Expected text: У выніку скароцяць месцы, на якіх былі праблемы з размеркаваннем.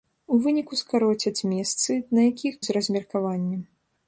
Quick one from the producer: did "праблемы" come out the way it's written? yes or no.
no